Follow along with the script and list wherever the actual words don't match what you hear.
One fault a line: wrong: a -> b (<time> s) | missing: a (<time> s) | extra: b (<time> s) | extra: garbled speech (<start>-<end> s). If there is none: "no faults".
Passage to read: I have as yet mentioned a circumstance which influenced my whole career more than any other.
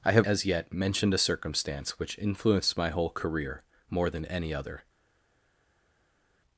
no faults